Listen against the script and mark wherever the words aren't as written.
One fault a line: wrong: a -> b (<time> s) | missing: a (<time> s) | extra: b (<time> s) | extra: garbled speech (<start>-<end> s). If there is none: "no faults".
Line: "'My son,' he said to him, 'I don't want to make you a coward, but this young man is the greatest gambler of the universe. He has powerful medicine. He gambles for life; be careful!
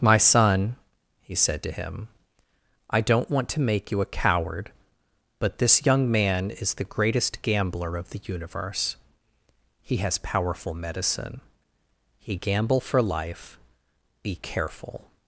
wrong: gambles -> gamble (12.3 s)